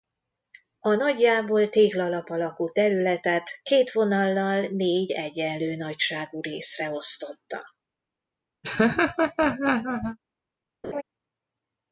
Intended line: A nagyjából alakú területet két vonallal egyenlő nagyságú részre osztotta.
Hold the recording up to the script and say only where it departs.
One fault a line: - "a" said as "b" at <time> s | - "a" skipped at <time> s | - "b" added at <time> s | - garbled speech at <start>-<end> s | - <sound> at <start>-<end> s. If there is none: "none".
- "téglalap" added at 1.7 s
- "négy" added at 4.7 s
- laugh at 8.6-10.2 s
- laugh at 10.8-11.0 s